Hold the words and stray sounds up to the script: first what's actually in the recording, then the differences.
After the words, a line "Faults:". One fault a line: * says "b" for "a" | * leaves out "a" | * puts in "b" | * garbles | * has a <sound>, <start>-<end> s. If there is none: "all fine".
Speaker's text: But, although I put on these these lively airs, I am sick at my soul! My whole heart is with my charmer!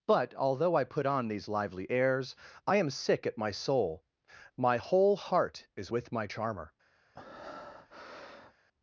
But, although I put on these lively airs, I am sick at my soul! My whole heart is with my charmer!
Faults:
* leaves out "these"
* has a breath, 7.1-8.5 s